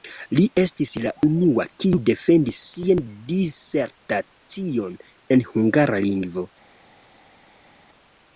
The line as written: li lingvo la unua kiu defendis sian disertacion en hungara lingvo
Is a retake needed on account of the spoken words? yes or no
yes